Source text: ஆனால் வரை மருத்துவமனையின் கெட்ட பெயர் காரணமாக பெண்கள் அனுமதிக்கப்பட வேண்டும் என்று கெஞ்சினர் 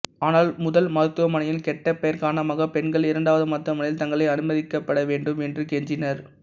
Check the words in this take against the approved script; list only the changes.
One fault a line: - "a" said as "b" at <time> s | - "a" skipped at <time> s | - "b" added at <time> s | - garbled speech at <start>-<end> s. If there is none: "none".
- "வரை" said as "முதல்" at 0.6 s
- "இரண்டாவது மருத்துவமனையில் தங்களை" added at 3.1 s